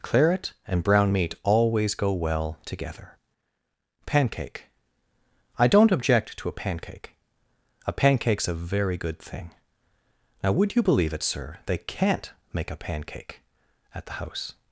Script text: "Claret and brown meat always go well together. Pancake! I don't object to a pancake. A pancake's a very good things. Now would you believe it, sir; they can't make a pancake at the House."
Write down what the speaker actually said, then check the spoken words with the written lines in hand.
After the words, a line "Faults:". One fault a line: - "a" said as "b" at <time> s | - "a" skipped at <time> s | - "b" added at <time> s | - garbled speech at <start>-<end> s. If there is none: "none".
"Claret and brown meat always go well together. Pancake! I don't object to a pancake. A pancake's a very good thing. Now would you believe it, sir; they can't make a pancake at the House."
Faults:
- "things" said as "thing" at 9.2 s